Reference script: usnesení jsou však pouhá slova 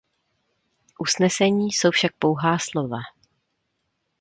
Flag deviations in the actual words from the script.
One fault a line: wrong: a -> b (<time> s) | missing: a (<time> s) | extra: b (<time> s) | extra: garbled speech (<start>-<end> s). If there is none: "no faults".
no faults